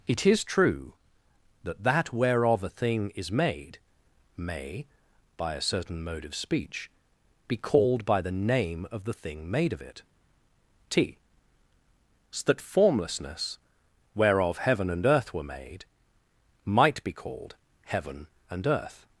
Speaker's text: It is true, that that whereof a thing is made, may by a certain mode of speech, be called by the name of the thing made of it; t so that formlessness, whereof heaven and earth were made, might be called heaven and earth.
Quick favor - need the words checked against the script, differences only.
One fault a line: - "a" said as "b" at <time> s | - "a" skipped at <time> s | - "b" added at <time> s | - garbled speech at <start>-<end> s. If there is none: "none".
none